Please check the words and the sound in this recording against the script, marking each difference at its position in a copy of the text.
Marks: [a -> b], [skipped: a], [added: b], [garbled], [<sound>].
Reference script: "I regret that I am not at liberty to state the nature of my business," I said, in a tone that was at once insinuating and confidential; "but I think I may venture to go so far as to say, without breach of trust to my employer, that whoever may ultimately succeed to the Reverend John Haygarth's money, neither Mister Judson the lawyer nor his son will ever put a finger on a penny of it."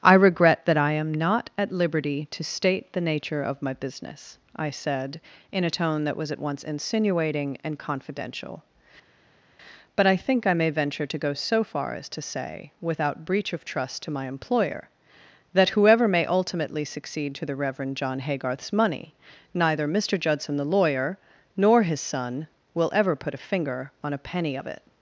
"I regret that I am not at liberty to state the nature of my business," I said, in a tone that was at once insinuating and confidential; "but I think I may venture to go so far as to say, without breach of trust to my employer, that whoever may ultimately succeed to the Reverend John Haygarth's money, neither Mister Judson the lawyer nor his son will ever put a finger on a penny of it."